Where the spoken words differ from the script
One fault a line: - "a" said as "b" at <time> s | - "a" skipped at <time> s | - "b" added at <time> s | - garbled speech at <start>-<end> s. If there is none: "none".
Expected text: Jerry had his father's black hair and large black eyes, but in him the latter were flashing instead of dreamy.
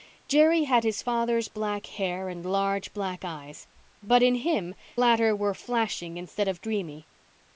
- "the" skipped at 4.7 s